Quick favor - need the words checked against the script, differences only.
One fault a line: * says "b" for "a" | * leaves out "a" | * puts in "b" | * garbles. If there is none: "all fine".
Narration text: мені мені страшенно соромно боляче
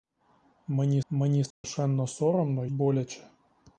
all fine